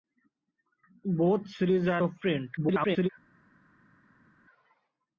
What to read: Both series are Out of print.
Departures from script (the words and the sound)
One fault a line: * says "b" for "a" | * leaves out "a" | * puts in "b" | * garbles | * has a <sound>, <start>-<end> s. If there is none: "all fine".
* leaves out "Out"
* garbles